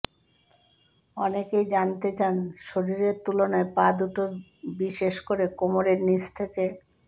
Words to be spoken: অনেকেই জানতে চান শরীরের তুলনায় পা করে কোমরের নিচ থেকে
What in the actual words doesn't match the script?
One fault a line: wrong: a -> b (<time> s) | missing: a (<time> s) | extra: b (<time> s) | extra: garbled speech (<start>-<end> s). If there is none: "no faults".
extra: দুটো বিশেষ (4.0 s)